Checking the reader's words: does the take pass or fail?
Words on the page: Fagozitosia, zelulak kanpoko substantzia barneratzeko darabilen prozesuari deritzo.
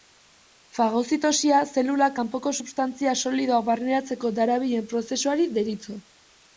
fail